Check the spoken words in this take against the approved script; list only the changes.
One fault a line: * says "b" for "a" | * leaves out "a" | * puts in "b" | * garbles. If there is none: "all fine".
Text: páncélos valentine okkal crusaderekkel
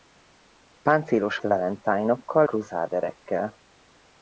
all fine